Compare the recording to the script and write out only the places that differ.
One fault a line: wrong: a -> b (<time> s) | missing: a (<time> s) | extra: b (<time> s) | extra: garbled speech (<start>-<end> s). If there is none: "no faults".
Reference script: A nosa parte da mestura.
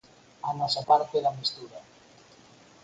no faults